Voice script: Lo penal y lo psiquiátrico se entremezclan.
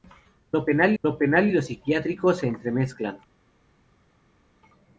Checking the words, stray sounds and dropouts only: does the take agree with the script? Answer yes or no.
no